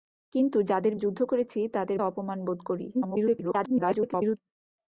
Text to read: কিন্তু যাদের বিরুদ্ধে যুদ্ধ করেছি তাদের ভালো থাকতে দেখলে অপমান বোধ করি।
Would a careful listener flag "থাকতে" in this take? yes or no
yes